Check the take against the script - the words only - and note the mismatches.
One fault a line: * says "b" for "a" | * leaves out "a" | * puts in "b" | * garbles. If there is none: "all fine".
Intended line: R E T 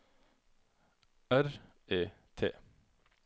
all fine